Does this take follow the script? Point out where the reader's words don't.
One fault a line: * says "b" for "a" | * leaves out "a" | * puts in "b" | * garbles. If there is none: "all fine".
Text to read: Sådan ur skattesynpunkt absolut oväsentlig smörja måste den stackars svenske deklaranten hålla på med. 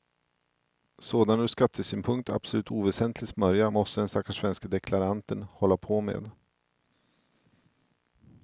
all fine